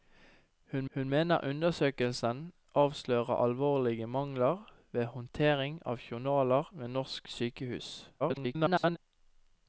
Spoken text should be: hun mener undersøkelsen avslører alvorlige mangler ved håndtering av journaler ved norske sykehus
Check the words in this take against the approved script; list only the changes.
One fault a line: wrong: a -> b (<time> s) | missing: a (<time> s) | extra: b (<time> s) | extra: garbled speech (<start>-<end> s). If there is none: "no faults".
extra: hun (0.9 s)
extra: garbled speech (8.2-9.0 s)